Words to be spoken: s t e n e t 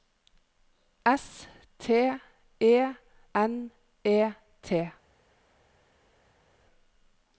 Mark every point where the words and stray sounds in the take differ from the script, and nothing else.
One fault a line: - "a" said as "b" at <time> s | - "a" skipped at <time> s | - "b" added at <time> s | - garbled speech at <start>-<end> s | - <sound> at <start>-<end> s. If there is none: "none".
none